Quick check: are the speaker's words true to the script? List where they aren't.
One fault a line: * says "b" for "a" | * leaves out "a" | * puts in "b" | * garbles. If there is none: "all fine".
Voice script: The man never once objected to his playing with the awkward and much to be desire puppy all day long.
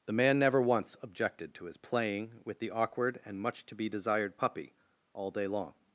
* says "desired" for "desire"